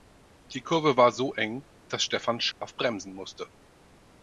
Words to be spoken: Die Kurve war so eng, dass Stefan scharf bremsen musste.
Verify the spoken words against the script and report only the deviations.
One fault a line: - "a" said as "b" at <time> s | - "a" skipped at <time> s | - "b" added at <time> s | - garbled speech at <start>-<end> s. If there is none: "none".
none